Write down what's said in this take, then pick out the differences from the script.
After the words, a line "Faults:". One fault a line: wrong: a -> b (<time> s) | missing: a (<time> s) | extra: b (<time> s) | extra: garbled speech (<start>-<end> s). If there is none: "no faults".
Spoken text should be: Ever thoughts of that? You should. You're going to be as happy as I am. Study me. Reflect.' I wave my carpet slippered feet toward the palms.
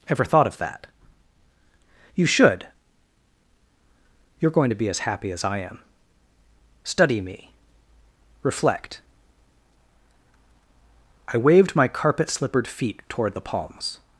Ever thought of that? You should. You're going to be as happy as I am. Study me. Reflect.' I waved my carpet slippered feet toward the palms.
Faults:
wrong: thoughts -> thought (0.2 s)
wrong: wave -> waved (11.4 s)